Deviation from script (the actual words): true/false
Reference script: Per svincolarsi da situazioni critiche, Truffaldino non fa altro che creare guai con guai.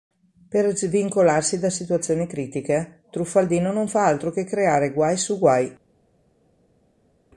true